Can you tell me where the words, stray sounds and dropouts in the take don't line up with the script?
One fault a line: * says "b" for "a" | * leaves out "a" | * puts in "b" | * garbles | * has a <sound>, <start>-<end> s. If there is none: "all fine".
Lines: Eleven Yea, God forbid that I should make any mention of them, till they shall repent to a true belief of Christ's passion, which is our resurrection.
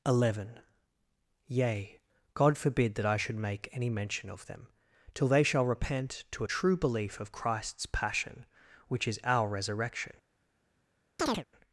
* has a chirp, 11.2-11.4 s